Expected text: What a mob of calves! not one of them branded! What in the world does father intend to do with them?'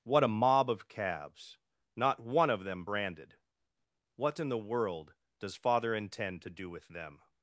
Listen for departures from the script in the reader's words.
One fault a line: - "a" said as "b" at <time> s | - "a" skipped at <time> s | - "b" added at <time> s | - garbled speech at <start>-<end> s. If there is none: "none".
none